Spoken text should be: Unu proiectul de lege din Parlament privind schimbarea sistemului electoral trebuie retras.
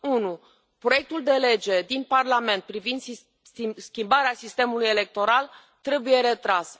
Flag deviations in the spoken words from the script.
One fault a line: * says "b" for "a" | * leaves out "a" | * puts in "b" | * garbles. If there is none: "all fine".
all fine